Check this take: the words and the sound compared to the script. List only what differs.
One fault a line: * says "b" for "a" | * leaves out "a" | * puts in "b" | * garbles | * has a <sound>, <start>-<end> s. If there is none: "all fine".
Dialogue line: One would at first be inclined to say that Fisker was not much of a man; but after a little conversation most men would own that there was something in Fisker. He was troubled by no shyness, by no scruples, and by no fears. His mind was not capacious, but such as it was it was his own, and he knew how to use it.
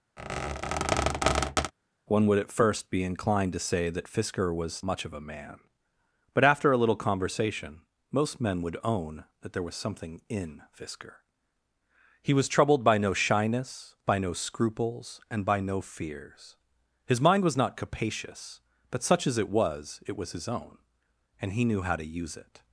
* has a squeak, 0.2-1.7 s
* leaves out "not"